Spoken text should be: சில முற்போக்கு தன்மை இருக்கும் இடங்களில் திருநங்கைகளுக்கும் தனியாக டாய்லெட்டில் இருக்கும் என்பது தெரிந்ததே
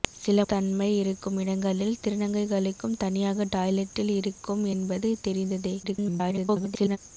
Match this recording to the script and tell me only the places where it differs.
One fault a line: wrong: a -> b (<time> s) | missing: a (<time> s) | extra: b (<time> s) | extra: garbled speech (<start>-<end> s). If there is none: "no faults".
missing: முற்போக்கு (0.4 s)
extra: garbled speech (5.8-7.0 s)